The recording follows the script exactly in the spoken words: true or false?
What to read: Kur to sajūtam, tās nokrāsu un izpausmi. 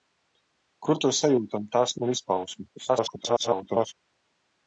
false